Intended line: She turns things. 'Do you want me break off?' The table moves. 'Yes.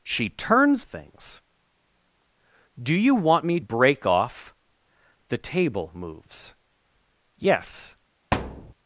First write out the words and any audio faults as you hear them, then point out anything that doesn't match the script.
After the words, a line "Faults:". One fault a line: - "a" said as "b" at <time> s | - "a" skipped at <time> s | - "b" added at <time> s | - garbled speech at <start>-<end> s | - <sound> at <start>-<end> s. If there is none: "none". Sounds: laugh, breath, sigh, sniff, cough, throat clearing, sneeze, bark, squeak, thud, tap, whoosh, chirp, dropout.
She turns things. 'Do you want me break off?' The table moves. 'Yes.
Faults:
- thud at 8.3-8.7 s